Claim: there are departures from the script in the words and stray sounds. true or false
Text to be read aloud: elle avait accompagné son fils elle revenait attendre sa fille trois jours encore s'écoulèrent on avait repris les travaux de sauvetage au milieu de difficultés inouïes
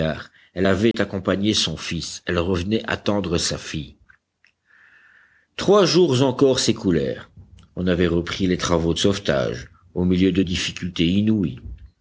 true